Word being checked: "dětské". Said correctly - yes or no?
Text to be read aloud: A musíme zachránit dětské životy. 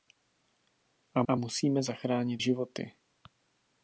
no